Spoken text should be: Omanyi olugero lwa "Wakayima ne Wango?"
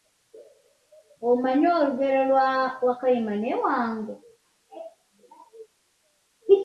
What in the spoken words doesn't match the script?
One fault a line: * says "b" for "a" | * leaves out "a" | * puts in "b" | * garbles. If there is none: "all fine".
all fine